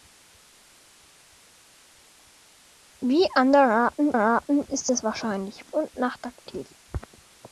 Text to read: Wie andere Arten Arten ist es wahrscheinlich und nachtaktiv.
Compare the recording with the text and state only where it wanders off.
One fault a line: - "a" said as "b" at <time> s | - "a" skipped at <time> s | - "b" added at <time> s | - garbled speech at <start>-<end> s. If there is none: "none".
none